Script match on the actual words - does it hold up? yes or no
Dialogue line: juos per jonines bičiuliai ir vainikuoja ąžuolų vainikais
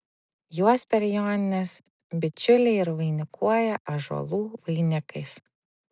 yes